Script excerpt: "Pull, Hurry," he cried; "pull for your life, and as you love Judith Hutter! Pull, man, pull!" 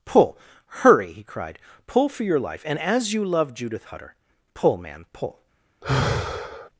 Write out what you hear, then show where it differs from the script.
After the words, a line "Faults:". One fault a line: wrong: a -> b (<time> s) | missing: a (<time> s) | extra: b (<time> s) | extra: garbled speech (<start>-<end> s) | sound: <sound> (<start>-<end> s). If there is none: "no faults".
"Pull, Hurry," he cried; "pull for your life, and as you love Judith Hutter! Pull, man, pull!"
Faults:
sound: sigh (5.8-6.7 s)